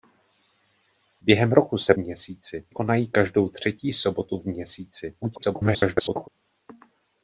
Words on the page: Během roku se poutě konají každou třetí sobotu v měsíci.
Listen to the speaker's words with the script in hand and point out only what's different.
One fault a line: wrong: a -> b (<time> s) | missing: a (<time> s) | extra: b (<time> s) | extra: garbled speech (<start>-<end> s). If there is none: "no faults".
wrong: poutě -> měsíci (1.9 s)
extra: garbled speech (5.2-6.3 s)